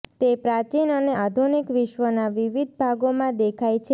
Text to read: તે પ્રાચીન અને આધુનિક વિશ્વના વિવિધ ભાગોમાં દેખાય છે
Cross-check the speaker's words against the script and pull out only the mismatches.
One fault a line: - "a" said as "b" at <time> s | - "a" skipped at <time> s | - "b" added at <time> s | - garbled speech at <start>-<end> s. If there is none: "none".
none